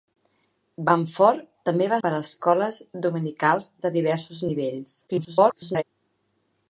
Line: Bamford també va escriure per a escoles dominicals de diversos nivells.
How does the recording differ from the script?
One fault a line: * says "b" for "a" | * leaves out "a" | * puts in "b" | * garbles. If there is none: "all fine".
* leaves out "escriure"
* garbles